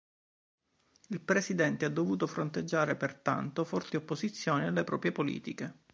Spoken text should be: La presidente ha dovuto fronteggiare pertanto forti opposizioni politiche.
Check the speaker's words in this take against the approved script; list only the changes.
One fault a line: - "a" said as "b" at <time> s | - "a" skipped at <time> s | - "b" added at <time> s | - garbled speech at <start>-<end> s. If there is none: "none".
- "La" said as "Il" at 1.1 s
- "alle proprie" added at 4.7 s